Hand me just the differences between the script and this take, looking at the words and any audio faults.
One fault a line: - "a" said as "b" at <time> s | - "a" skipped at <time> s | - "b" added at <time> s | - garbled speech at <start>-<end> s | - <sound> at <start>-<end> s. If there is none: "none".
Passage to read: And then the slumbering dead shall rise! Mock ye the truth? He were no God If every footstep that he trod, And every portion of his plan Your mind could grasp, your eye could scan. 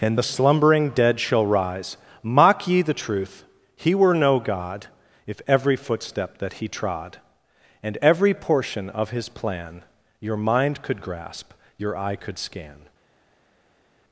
- "then" skipped at 0.2 s